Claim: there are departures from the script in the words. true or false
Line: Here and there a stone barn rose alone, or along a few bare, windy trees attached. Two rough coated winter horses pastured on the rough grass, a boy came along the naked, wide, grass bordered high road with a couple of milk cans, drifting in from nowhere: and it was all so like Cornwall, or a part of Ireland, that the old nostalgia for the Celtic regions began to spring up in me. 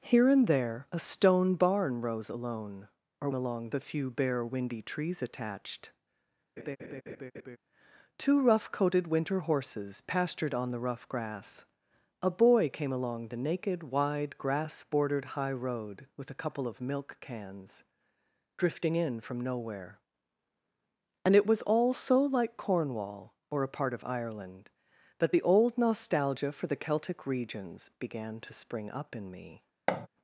false